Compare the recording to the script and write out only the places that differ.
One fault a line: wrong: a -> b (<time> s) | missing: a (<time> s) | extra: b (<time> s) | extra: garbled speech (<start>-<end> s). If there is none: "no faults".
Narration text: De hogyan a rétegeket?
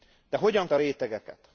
no faults